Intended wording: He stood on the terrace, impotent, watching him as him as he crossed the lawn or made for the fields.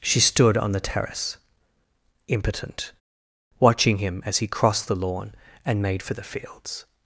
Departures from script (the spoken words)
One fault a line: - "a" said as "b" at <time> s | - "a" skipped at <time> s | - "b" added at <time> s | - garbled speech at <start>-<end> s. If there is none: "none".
- "He" said as "She" at 0.0 s
- "him as" skipped at 4.4 s
- "or" said as "and" at 5.6 s